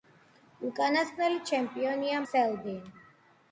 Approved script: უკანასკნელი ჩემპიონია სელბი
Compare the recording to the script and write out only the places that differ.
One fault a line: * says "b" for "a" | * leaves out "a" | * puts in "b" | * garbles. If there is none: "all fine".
all fine